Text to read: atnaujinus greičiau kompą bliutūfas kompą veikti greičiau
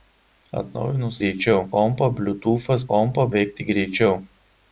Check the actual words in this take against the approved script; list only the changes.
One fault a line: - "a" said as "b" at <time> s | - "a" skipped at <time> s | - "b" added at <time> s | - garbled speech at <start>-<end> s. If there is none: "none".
none